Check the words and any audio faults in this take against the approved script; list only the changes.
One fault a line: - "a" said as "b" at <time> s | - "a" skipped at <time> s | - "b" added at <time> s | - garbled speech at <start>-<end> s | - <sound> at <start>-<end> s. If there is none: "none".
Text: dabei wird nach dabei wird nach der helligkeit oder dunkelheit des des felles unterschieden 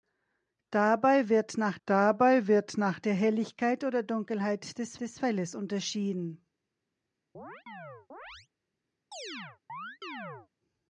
- chirp at 7.3-8.5 s
- chirp at 9.1-10.5 s